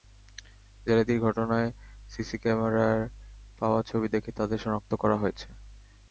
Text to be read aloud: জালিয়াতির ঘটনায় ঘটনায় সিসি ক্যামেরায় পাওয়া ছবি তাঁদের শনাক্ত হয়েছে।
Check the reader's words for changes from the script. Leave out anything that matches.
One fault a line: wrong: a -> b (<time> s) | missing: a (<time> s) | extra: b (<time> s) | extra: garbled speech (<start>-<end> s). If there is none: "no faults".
missing: ঘটনায় (1.7 s)
extra: দেখে (4.1 s)
extra: করা (4.9 s)